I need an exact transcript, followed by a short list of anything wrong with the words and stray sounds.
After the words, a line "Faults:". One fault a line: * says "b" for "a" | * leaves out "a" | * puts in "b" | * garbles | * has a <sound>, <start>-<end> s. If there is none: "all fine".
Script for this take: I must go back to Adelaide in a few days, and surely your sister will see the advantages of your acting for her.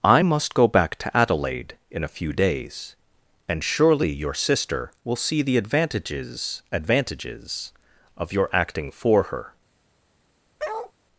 I must go back to Adelaide in a few days, and surely your sister will see the advantages advantages of your acting for her.
Faults:
* puts in "advantages"
* has a bark, 10.6-10.9 s